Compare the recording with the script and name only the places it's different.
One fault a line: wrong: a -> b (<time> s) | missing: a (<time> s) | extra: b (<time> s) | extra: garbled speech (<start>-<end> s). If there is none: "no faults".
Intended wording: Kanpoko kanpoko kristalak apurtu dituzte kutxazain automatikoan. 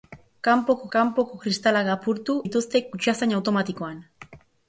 no faults